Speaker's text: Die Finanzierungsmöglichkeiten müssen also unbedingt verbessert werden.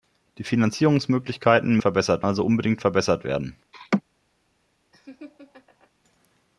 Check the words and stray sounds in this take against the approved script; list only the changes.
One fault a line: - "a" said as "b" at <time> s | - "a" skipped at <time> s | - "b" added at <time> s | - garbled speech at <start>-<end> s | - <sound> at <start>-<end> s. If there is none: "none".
- "müssen" said as "verbessert" at 1.8 s
- laugh at 3.7-4.0 s
- laugh at 4.9-5.9 s